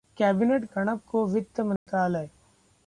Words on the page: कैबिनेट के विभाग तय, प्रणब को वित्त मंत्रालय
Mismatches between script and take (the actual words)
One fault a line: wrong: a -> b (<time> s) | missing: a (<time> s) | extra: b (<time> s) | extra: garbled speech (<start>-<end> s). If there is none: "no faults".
missing: के विभाग तय (0.7 s)